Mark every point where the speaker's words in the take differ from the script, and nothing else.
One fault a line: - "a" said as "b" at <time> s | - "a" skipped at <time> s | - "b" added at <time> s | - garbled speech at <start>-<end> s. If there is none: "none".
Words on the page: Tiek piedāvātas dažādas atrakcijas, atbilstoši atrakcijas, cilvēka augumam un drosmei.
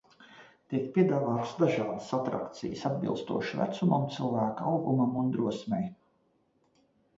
- "atrakcijas" said as "vecumam" at 3.6 s